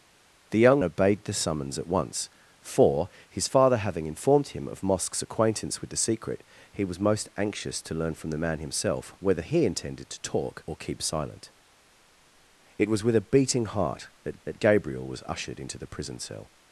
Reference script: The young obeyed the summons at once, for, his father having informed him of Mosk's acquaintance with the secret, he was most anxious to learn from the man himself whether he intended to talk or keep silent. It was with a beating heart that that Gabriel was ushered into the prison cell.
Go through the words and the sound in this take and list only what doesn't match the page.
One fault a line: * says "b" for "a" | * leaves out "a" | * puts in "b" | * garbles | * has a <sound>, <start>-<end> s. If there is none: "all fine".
all fine